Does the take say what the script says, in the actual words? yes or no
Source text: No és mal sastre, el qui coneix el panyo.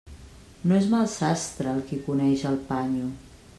yes